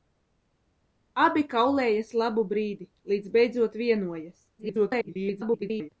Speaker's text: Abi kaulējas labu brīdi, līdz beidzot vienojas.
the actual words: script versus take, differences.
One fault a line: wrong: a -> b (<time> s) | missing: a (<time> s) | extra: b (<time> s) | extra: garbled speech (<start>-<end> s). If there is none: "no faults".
extra: garbled speech (4.6-5.9 s)